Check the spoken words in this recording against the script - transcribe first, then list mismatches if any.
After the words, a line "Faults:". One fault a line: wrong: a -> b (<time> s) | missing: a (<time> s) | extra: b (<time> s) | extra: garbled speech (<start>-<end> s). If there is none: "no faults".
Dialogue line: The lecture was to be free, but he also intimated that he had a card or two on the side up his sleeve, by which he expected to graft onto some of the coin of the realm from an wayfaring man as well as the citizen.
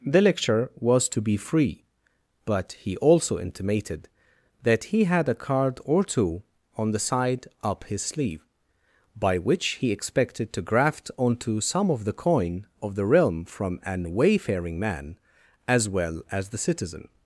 The lecture was to be free, but he also intimated that he had a card or two on the side up his sleeve, by which he expected to graft onto some of the coin of the realm from an wayfaring man as well as the citizen.
Faults:
no faults